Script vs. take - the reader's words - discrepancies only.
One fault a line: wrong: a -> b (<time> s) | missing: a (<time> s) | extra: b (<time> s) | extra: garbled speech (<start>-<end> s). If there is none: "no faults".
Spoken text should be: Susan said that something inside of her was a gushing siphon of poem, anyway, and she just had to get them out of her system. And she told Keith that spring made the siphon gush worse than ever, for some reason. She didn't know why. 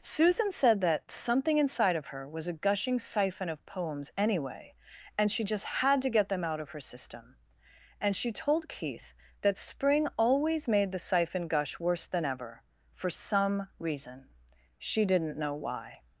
wrong: poem -> poems (3.7 s)
extra: always (10.2 s)